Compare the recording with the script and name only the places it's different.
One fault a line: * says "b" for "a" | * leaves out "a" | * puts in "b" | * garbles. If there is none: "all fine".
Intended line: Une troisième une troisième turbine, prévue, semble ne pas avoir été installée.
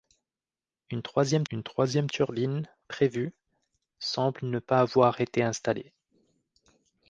all fine